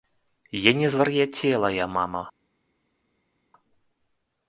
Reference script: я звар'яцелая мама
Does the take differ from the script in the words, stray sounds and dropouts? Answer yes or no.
yes